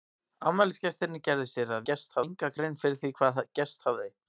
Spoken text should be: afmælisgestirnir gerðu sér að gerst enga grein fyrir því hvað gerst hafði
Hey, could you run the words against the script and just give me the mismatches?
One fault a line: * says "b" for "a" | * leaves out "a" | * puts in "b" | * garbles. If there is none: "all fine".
all fine